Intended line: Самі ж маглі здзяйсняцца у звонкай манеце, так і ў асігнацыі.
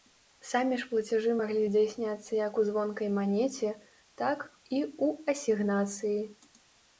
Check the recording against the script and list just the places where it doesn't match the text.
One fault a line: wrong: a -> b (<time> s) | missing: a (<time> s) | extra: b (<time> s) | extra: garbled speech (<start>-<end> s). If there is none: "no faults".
extra: плацяжы (0.9 s)
extra: як (2.4 s)